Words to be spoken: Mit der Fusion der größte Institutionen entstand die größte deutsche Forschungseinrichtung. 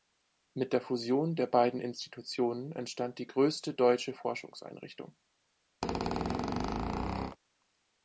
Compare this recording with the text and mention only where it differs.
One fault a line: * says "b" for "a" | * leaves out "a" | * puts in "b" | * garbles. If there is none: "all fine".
* says "beiden" for "größte"